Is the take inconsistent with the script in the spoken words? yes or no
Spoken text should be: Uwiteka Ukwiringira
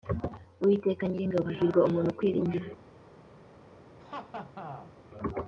yes